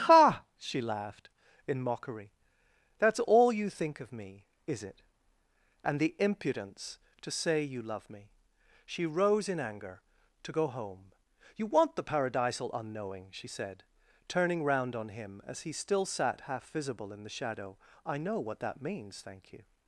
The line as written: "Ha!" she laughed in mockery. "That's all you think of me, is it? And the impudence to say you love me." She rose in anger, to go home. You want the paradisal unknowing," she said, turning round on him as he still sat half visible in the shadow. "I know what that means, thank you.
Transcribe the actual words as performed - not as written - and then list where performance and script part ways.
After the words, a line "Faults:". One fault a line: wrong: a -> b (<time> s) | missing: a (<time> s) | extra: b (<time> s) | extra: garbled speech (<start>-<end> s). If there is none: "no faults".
"Ha!" she laughed in mockery. "That's all you think of me, is it? And the impudence to say you love me." She rose in anger, to go home. You want the paradisal unknowing," she said, turning round on him as he still sat half visible in the shadow. "I know what that means, thank you.
Faults:
no faults